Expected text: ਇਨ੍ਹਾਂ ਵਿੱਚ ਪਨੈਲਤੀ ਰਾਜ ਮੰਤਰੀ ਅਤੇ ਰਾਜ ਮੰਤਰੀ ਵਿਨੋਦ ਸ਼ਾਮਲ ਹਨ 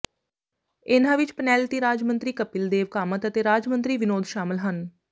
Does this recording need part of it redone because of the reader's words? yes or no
yes